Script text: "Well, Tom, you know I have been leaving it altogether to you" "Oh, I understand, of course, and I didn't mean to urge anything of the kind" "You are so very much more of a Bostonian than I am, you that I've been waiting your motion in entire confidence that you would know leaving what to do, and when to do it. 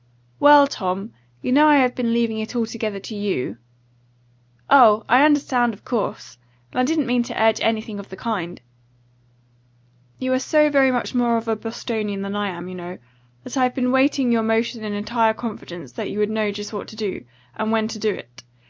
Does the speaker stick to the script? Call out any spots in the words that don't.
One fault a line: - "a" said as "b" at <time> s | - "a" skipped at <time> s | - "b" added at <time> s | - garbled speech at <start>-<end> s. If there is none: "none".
- "know" added at 12.7 s
- "leaving" said as "just" at 16.5 s